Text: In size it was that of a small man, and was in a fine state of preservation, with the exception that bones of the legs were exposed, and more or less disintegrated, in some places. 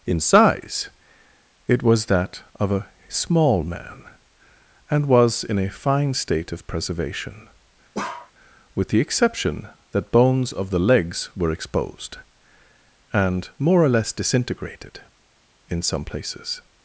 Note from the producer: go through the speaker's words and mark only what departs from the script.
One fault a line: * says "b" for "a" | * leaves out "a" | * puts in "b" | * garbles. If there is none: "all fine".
all fine